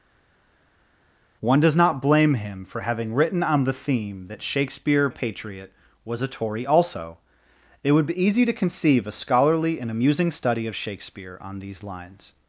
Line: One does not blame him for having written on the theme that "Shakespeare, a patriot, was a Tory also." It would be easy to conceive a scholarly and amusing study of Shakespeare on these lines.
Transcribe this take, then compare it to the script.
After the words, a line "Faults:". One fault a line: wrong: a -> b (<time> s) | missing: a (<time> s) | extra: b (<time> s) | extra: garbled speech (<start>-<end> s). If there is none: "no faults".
One does not blame him for having written on the theme that "Shakespeare, a patriot, was a Tory also." It would be easy to conceive a scholarly and amusing study of Shakespeare on these lines.
Faults:
no faults